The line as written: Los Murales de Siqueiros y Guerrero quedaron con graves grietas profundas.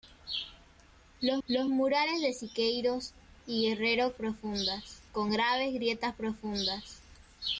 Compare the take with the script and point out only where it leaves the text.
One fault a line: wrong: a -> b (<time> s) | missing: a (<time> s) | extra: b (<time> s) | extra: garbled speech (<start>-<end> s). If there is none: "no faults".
extra: los (1.5 s)
wrong: quedaron -> profundas (4.2 s)